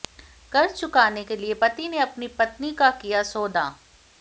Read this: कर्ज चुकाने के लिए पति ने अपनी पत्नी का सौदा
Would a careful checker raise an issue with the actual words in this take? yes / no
yes